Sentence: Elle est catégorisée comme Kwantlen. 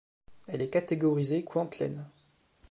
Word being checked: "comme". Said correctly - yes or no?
no